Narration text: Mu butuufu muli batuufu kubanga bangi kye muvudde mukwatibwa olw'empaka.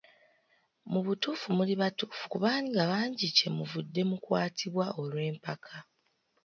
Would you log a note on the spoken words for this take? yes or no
no